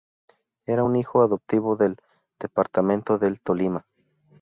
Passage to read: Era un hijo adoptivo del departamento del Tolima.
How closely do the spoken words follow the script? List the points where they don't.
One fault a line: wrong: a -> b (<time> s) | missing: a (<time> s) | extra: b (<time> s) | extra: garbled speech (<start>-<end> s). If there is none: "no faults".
no faults